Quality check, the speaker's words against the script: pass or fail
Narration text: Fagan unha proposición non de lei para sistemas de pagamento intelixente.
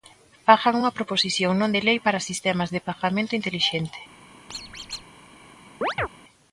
pass